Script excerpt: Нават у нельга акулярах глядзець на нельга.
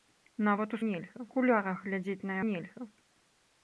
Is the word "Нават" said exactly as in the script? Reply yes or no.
yes